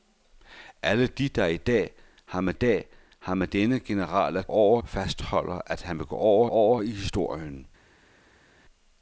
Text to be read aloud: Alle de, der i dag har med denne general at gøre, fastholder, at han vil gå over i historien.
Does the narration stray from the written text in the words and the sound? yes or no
yes